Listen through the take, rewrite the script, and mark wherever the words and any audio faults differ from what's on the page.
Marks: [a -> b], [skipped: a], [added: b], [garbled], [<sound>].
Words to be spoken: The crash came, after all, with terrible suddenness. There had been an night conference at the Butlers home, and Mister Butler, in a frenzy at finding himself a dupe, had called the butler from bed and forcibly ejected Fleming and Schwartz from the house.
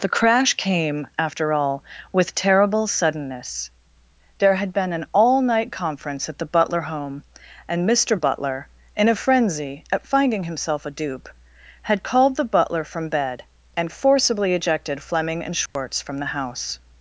The crash came, after all, with terrible suddenness. There had been an [added: all] night conference at the [Butlers -> Butler] home, and Mister Butler, in a frenzy at finding himself a dupe, had called the butler from bed and forcibly ejected Fleming and Schwartz [dropout] from the house.